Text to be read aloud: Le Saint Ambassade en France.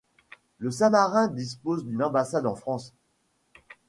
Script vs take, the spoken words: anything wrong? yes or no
yes